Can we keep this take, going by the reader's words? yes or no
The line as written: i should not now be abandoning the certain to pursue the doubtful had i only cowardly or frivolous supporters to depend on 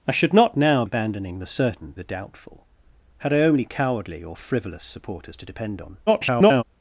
no